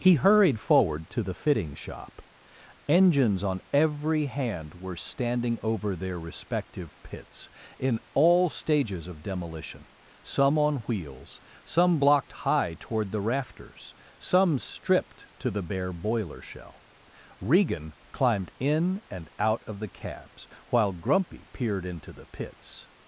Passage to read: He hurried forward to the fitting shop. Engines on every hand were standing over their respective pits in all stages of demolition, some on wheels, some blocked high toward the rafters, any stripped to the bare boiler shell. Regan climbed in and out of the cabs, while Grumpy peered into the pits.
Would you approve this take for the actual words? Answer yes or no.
no